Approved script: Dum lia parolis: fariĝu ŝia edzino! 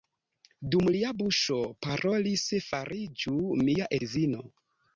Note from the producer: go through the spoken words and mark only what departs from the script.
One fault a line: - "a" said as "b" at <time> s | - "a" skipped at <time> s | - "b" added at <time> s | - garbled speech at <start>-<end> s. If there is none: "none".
- "buŝo" added at 1.2 s
- "ŝia" said as "mia" at 3.7 s